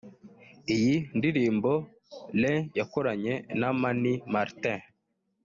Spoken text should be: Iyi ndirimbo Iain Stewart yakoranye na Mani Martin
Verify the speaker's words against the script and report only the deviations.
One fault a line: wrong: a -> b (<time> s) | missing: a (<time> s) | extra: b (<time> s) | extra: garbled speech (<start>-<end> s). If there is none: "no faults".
missing: Stewart (2.6 s)